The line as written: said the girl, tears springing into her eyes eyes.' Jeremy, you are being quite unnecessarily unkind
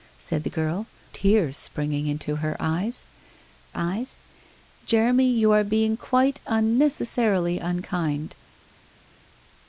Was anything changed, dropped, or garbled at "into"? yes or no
no